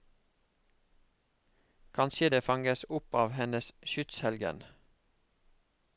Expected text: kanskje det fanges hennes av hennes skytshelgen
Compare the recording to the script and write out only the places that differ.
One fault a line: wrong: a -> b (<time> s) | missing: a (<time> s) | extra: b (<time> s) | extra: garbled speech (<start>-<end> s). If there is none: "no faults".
wrong: hennes -> opp (2.9 s)